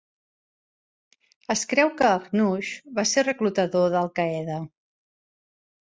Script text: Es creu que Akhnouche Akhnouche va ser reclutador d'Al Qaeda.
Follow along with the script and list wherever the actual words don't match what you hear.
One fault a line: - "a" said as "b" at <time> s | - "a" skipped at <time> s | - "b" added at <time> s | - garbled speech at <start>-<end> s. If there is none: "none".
- "Akhnouche" skipped at 3.0 s